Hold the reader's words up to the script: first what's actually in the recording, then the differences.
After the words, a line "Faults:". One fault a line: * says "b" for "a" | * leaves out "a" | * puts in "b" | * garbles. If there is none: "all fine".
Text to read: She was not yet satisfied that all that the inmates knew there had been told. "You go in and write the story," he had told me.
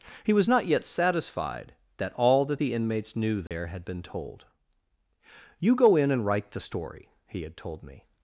He was not yet satisfied that all that the inmates knew there had been told. "You go in and write the story," he had told me.
Faults:
* says "He" for "She"